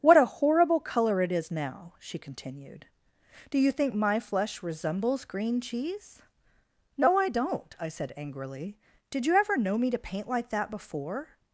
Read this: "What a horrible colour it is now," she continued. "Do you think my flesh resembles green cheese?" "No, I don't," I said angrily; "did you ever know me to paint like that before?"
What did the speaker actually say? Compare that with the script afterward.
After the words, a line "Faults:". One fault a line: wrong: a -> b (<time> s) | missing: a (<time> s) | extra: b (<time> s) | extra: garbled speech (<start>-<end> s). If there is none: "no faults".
"What a horrible colour it is now," she continued. "Do you think my flesh resembles green cheese?" "No, I don't," I said angrily; "did you ever know me to paint like that before?"
Faults:
no faults